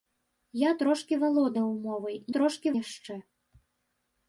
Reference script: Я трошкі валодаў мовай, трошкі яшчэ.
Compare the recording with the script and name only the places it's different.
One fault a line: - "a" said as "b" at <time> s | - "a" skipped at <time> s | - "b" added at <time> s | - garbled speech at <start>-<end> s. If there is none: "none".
none